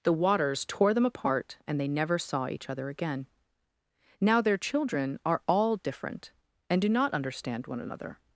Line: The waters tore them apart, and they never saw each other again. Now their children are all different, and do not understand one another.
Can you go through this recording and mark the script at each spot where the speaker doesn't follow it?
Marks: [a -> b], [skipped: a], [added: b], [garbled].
The waters tore them apart, and they never saw each other again. Now their children are all different, and do not understand one another.